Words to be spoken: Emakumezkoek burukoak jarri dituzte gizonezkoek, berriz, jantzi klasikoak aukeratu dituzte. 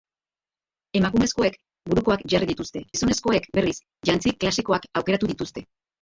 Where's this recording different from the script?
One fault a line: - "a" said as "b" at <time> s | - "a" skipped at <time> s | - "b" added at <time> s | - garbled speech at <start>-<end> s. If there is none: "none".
none